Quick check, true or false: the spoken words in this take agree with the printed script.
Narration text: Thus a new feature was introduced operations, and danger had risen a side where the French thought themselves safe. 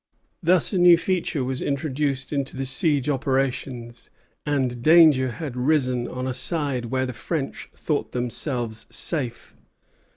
false